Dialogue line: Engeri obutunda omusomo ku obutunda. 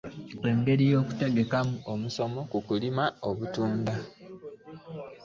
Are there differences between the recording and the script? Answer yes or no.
yes